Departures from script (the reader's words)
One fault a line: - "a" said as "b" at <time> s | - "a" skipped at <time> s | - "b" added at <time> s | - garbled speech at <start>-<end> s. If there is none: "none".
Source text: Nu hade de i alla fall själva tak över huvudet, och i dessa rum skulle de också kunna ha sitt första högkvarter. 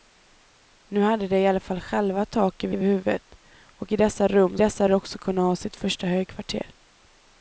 - "över" added at 2.7 s
- "skulle" said as "dessa" at 4.6 s